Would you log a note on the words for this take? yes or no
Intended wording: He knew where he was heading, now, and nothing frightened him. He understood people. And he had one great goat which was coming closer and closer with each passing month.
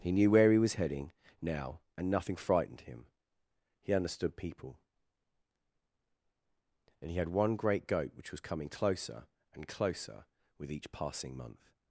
no